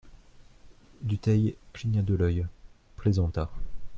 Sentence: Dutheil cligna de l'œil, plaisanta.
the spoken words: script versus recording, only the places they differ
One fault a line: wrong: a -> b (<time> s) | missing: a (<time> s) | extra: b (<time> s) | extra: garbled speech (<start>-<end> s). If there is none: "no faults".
no faults